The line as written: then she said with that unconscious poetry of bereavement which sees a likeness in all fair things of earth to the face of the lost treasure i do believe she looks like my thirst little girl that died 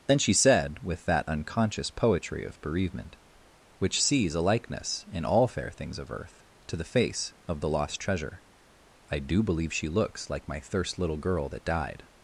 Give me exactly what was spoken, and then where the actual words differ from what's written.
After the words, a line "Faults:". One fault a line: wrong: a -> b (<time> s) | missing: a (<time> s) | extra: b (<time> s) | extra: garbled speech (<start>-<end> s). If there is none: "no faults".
then she said with that unconscious poetry of bereavement which sees a likeness in all fair things of earth to the face of the lost treasure i do believe she looks like my thirst little girl that died
Faults:
no faults